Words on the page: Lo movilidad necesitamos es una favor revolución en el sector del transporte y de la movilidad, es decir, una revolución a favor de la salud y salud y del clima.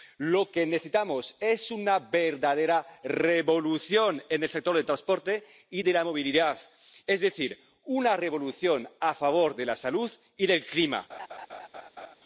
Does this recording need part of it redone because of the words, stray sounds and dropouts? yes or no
yes